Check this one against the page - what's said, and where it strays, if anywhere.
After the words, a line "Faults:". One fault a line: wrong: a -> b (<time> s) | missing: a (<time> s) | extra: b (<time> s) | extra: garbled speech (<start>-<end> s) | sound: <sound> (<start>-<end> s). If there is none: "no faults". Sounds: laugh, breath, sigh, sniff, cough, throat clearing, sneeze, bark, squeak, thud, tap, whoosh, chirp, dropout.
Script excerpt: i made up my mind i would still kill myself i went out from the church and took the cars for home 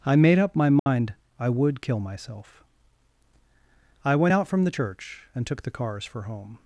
i made up my mind i would kill myself i went out from the church and took the cars for home
Faults:
sound: dropout (0.8-0.9 s)
missing: still (1.8 s)